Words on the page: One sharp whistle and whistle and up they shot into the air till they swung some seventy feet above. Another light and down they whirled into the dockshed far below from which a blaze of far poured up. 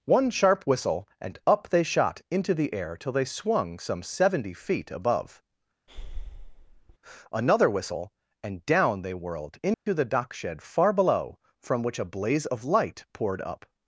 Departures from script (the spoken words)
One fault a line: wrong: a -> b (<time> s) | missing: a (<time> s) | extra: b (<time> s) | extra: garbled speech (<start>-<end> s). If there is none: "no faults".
missing: whistle and (1.4 s)
wrong: light -> whistle (7.7 s)
wrong: far -> light (12.6 s)